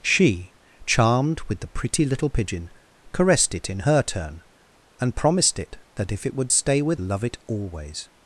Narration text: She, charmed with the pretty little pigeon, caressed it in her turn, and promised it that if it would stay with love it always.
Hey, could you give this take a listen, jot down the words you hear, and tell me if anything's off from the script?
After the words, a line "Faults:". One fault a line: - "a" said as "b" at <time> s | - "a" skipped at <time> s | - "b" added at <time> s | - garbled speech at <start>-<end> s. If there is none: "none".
She, charmed with the pretty little pigeon, caressed it in her turn, and promised it that if it would stay with love it always.
Faults:
none